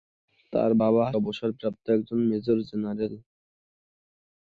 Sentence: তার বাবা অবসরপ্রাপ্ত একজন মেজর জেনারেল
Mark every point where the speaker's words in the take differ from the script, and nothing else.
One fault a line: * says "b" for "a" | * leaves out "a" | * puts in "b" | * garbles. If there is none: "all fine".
all fine